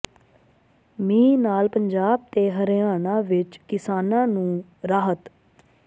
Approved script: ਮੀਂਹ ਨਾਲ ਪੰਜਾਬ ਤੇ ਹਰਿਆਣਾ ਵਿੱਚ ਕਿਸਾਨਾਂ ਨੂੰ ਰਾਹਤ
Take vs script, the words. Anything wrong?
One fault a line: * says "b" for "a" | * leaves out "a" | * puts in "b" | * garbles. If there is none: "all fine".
all fine